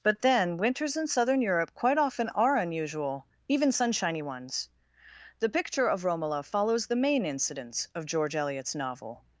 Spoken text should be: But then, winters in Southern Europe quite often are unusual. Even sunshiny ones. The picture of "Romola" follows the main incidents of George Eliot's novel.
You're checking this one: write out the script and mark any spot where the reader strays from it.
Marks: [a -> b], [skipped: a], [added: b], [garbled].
But then, winters in Southern Europe quite often are unusual. Even sunshiny ones. The picture of "Romola" follows the main incidents of George Eliot's novel.